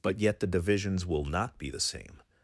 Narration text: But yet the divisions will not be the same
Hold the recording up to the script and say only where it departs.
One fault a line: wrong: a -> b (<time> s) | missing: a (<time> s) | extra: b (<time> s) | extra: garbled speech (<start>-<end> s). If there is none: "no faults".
no faults